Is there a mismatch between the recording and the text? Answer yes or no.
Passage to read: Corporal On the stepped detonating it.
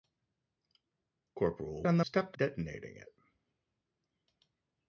no